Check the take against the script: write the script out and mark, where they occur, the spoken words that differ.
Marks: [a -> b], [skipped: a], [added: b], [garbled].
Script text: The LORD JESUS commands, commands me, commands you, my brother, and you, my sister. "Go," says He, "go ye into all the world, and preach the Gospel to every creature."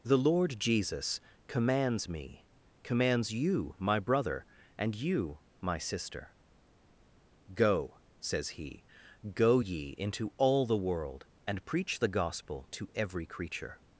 The LORD JESUS commands, [skipped: commands] me, commands you, my brother, and you, my sister. "Go," says He, "go ye into all the world, and preach the Gospel to every creature."